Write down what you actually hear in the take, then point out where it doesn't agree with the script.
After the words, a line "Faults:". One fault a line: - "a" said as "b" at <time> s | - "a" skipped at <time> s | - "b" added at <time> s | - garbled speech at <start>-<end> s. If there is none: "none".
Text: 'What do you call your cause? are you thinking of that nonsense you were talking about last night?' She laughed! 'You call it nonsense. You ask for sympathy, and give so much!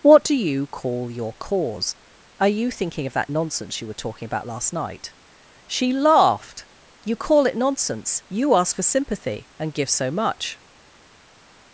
'What do you call your cause? are you thinking of that nonsense you were talking about last night?' She laughed! 'You call it nonsense. You ask for sympathy, and give so much!
Faults:
none